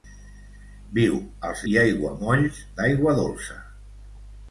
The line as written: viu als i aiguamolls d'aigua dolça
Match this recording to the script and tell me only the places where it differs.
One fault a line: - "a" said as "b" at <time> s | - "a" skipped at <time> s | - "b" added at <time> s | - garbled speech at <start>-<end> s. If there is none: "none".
none